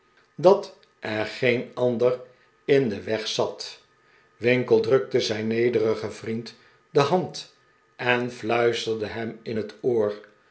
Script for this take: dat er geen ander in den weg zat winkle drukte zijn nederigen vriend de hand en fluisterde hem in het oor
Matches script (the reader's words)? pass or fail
pass